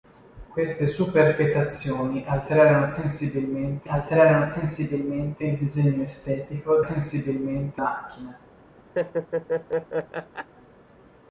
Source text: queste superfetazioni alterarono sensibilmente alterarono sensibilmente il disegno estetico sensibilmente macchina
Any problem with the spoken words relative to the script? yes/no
no